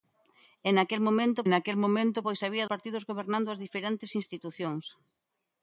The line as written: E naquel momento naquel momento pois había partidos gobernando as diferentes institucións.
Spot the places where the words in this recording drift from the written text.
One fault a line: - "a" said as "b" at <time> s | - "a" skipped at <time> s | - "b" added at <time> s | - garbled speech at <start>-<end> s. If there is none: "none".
none